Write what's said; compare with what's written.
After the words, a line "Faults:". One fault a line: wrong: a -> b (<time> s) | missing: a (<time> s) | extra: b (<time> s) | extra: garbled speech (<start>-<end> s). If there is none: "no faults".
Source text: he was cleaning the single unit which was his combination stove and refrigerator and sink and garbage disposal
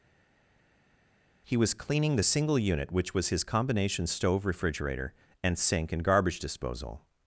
he was cleaning the single unit which was his combination stove refrigerator and sink and garbage disposal
Faults:
missing: and (4.4 s)